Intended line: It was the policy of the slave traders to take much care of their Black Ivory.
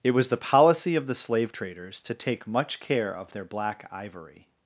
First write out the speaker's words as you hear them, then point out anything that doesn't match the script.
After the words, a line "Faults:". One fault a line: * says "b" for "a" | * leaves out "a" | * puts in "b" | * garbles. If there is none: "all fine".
It was the policy of the slave traders to take much care of their Black Ivory.
Faults:
all fine